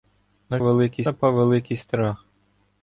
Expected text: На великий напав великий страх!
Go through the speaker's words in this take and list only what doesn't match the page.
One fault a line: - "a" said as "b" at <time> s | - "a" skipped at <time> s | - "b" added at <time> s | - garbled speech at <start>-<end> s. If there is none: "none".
none